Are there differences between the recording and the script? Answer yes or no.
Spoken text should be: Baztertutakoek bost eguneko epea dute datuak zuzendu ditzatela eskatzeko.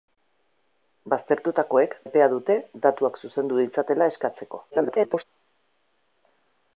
yes